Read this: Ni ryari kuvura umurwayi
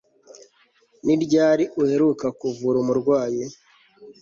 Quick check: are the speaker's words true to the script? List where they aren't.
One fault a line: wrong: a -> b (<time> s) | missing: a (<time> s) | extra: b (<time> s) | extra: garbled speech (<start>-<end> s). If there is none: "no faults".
extra: uheruka (1.8 s)